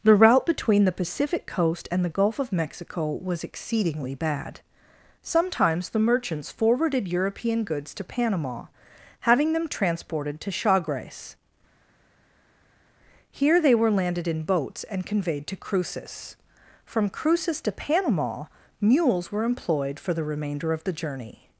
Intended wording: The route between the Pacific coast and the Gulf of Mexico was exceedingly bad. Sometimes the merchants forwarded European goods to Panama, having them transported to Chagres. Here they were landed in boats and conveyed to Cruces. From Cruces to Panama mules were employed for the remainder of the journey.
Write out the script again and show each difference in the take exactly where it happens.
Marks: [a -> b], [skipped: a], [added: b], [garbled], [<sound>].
The route between the Pacific coast and the Gulf of Mexico was exceedingly bad. Sometimes the merchants forwarded European goods to Panama, having them transported to Chagres. Here they were landed in boats and conveyed to Cruces. From Cruces to Panama mules were employed for the remainder of the journey.